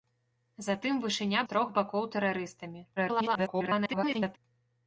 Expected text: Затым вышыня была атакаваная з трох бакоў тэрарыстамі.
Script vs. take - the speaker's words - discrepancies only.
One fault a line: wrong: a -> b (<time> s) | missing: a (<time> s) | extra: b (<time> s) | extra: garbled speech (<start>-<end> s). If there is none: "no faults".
missing: была атакаваная (1.4 s)
extra: garbled speech (3.0-4.4 s)